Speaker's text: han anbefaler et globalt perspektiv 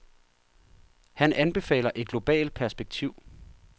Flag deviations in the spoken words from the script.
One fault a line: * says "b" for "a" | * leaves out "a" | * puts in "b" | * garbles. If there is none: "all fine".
all fine